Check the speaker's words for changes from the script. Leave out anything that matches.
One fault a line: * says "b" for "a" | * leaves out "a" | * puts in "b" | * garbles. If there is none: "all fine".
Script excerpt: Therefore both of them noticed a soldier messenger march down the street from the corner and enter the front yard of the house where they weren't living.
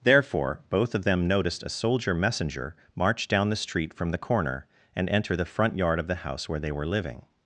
* says "were" for "weren't"